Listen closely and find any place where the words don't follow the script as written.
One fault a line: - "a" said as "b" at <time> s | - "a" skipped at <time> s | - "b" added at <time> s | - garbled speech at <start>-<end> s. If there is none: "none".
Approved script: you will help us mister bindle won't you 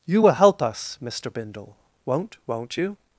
- "won't" added at 2.5 s